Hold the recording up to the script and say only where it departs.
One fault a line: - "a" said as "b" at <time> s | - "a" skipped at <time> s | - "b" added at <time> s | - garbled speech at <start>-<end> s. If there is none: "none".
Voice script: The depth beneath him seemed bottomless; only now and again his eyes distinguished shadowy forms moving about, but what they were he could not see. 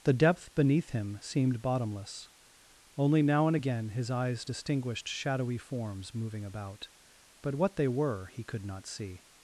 none